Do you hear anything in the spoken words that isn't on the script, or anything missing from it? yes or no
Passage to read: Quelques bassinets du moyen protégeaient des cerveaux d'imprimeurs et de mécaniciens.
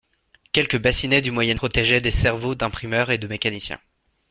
no